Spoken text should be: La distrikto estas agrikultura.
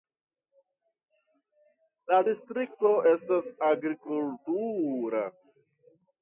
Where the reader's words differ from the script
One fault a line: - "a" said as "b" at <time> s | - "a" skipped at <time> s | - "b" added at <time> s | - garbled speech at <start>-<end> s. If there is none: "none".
none